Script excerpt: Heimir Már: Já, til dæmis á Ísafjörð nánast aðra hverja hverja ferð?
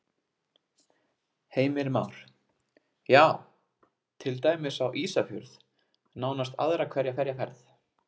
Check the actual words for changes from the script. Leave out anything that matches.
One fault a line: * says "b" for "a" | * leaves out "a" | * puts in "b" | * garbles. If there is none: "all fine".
all fine